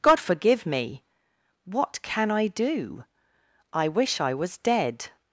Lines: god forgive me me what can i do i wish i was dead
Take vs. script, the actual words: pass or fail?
fail